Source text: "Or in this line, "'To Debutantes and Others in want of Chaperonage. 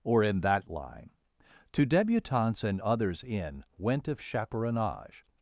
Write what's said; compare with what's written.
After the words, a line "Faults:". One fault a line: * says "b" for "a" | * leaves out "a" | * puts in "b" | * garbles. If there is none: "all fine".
"Or in that line, "'To Debutantes and Others in went of Chaperonage.
Faults:
* says "that" for "this"
* says "went" for "want"